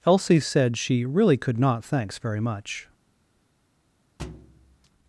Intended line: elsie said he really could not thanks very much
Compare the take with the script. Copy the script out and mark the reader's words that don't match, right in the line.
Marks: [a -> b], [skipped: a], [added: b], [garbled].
elsie said [he -> she] really could not thanks very much